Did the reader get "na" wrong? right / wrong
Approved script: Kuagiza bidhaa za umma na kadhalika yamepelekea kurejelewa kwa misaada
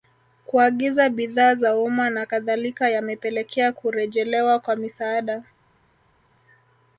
right